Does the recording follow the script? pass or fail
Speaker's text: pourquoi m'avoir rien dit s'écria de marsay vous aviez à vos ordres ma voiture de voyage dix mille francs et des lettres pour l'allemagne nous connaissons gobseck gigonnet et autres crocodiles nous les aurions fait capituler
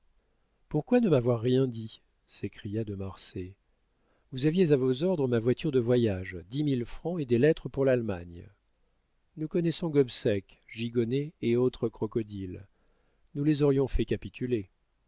fail